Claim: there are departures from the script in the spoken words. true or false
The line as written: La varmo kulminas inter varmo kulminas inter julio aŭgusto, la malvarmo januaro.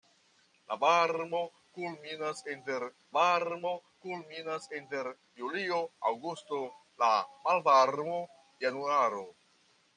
false